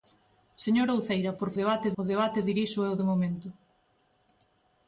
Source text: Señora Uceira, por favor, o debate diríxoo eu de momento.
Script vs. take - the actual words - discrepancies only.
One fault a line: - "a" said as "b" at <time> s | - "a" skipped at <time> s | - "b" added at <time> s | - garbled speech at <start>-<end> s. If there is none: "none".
- "favor" said as "debate" at 1.6 s